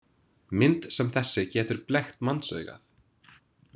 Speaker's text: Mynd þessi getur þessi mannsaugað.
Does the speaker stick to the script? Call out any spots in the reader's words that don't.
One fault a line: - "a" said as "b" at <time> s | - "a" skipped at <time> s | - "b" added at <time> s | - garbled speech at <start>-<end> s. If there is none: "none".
- "sem" added at 0.9 s
- "þessi" said as "blekkt" at 1.9 s